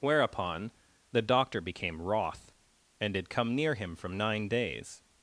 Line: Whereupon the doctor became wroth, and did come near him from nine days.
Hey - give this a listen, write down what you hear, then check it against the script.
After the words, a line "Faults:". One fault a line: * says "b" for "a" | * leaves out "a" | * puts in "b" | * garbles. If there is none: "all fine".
Whereupon the doctor became wroth, and did come near him from nine days.
Faults:
all fine